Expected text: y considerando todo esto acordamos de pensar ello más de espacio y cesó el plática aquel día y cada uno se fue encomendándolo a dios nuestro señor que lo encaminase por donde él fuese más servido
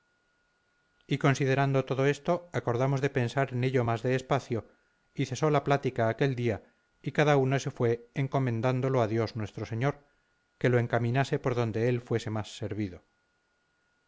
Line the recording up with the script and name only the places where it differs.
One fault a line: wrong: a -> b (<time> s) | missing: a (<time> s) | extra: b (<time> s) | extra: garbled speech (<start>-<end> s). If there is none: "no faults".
extra: en (3.5 s)
wrong: el -> la (5.5 s)